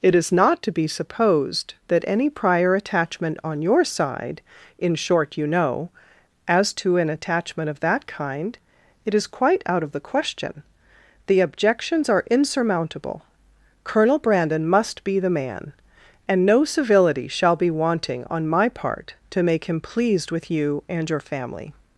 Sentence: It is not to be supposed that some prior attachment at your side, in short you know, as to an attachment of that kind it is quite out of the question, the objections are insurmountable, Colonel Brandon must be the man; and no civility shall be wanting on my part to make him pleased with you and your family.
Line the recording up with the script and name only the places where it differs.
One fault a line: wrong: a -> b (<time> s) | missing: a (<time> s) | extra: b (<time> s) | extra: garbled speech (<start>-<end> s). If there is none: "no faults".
wrong: some -> any (2.1 s)
wrong: at -> on (3.4 s)